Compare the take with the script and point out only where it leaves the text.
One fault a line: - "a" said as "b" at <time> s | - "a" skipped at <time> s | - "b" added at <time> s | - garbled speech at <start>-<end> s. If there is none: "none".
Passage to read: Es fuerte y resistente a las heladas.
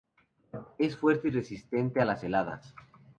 none